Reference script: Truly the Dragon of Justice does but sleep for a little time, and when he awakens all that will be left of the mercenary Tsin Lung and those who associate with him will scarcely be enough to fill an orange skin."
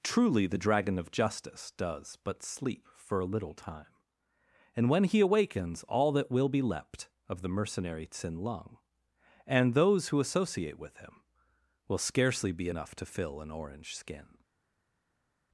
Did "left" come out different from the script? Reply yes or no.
yes